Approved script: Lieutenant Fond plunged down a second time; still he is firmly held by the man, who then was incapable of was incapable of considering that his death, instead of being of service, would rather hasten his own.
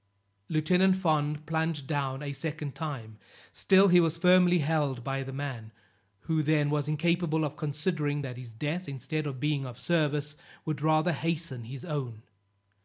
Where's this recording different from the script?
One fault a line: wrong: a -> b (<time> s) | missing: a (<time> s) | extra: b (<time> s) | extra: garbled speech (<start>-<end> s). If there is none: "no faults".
wrong: is -> was (4.0 s)
missing: was incapable of (7.6 s)